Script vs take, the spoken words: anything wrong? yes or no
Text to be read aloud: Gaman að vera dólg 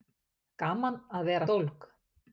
no